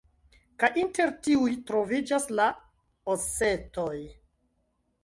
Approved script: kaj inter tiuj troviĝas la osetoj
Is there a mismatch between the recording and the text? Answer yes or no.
no